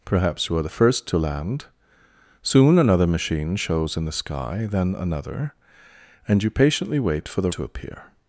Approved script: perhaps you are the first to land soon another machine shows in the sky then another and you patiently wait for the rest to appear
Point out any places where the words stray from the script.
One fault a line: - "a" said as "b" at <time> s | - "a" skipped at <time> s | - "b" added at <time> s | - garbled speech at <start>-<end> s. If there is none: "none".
- "rest" skipped at 7.5 s